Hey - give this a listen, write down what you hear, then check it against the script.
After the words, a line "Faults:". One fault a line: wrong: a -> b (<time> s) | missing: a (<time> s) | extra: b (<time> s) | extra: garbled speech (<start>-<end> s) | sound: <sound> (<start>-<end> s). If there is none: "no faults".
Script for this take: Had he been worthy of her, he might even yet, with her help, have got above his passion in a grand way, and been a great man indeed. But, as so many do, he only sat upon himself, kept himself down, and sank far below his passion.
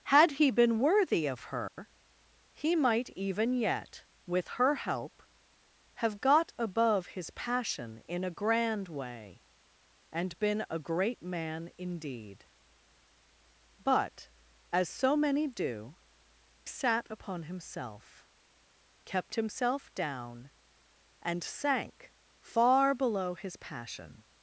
Had he been worthy of her, he might even yet, with her help, have got above his passion in a grand way, and been a great man indeed. But, as so many do, sat upon himself, kept himself down, and sank far below his passion.
Faults:
sound: dropout (1.7-1.8 s)
missing: he only (16.0 s)